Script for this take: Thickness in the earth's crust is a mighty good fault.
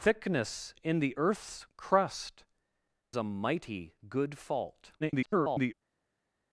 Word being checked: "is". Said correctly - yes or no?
no